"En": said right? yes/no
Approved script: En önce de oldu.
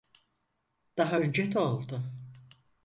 no